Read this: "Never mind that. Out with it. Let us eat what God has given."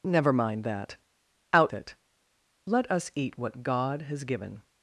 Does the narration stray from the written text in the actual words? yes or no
yes